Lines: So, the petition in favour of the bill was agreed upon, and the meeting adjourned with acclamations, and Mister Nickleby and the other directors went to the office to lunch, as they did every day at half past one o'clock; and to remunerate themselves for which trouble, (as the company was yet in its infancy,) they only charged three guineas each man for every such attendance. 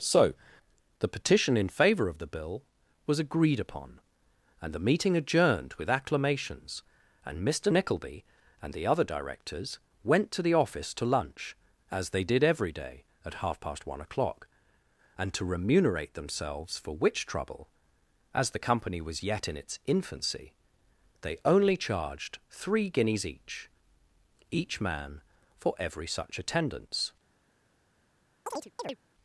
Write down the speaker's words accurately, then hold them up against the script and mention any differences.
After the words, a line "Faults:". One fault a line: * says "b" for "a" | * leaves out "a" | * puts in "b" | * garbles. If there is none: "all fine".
So, the petition in favour of the bill was agreed upon, and the meeting adjourned with acclamations, and Mister Nickleby and the other directors went to the office to lunch, as they did every day at half past one o'clock; and to remunerate themselves for which trouble, (as the company was yet in its infancy,) they only charged three guineas each each man for every such attendance.
Faults:
* puts in "each"